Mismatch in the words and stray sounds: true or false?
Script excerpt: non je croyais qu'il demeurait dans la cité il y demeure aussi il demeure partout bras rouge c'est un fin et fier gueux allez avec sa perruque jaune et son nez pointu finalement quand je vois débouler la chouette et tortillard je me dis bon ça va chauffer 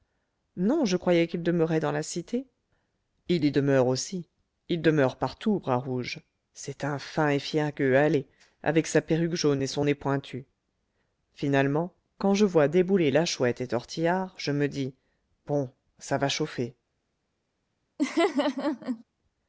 true